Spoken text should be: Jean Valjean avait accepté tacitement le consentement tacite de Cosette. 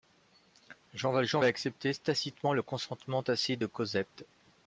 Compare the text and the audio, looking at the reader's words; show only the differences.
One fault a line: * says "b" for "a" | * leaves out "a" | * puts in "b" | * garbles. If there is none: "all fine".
all fine